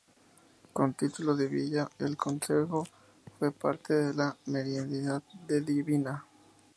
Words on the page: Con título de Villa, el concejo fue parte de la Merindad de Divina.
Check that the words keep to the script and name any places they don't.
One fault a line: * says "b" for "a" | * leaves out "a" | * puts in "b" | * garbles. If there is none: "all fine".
all fine